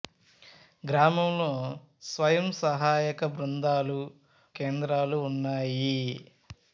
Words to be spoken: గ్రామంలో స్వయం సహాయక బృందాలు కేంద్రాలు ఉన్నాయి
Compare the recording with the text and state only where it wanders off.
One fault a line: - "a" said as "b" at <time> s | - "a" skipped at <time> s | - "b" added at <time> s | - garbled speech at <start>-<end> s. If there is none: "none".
none